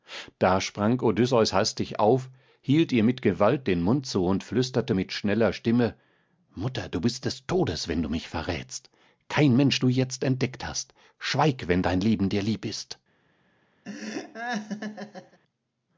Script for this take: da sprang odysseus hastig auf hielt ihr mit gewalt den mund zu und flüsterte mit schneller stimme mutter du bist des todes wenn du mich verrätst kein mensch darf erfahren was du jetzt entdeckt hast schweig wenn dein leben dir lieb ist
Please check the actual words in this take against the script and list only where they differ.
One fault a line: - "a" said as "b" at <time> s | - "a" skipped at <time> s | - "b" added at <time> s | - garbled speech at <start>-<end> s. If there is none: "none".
- "darf erfahren was" skipped at 9.8 s